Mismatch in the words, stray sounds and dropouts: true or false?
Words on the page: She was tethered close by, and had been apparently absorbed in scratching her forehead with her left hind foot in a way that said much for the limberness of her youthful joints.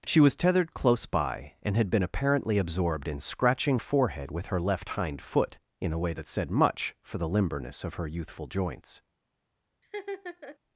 true